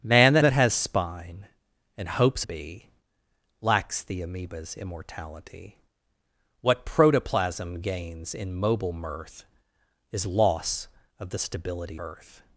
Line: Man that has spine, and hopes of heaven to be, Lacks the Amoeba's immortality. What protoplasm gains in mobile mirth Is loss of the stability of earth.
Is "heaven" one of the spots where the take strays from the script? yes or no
yes